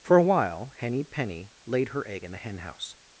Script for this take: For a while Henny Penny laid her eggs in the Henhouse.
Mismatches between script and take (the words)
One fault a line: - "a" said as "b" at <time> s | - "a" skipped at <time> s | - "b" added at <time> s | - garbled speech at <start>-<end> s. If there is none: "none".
- "eggs" said as "egg" at 2.1 s